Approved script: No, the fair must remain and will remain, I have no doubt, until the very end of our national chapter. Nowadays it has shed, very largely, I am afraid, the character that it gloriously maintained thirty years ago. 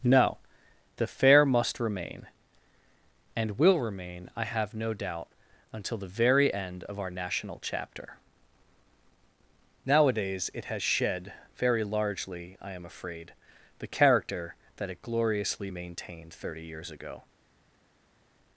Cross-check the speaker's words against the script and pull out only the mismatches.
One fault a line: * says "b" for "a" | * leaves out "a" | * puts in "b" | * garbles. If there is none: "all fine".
all fine